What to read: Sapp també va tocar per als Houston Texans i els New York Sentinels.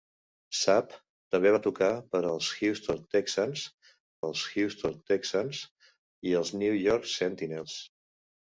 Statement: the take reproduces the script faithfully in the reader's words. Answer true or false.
false